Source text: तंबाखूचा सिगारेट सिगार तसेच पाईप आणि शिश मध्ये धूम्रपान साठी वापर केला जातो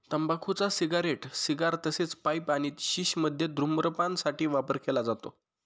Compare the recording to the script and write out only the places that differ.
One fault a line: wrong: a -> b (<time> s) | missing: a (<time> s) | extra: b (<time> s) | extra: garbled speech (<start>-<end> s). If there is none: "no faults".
no faults